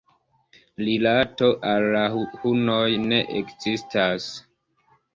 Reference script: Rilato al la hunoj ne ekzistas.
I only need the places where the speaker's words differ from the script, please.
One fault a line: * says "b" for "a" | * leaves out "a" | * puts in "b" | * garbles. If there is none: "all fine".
all fine